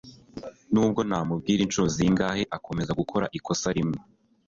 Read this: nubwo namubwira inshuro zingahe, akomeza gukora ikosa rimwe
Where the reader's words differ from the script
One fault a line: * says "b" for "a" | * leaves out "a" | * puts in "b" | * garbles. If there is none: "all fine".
all fine